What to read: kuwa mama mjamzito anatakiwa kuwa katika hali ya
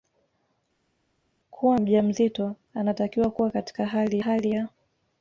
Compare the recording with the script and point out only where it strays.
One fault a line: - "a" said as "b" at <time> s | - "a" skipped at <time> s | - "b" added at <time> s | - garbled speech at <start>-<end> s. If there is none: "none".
- "mama" skipped at 1.8 s
- "hali" added at 4.2 s